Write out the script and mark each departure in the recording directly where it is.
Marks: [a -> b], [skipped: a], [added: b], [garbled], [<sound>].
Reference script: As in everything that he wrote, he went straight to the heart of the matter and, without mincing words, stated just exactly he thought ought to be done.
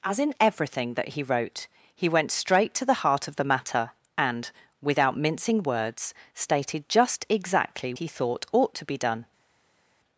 As in everything that he wrote, he went straight to the heart of the matter and, without mincing words, stated just exactly he thought ought to be done.